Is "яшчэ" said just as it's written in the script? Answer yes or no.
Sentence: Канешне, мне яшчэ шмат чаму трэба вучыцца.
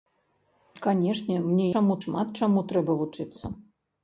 no